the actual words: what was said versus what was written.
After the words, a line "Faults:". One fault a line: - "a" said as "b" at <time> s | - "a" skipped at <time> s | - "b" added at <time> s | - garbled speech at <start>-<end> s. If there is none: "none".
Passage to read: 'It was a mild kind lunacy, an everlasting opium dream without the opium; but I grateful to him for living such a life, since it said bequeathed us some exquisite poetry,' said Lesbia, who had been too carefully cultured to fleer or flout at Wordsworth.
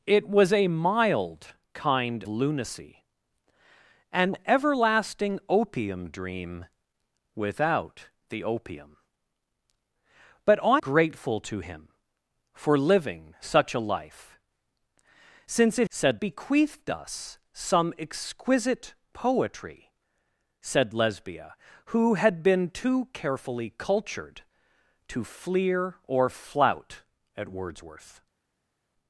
'It was a mild kind lunacy, an everlasting opium dream without the opium; but I grateful to him for living such a life, since it said bequeathed us some exquisite poetry,' said Lesbia, who had been too carefully cultured to fleer or flout at Wordsworth.
Faults:
none